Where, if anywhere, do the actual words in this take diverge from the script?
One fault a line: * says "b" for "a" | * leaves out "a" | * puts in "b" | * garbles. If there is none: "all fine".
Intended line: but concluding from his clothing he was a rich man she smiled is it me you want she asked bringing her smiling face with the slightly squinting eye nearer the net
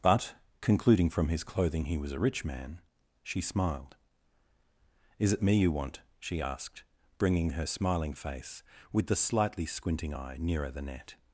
all fine